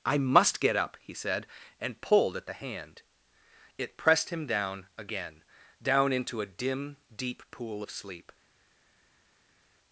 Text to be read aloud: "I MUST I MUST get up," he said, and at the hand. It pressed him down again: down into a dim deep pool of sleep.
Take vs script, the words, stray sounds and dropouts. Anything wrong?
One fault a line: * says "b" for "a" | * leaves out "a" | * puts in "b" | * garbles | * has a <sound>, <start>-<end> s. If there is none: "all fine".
* leaves out "I MUST"
* puts in "pulled"